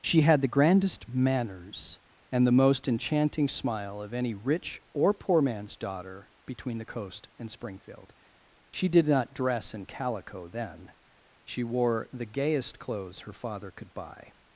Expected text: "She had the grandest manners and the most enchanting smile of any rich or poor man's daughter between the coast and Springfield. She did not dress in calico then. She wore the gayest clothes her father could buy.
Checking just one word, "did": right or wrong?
right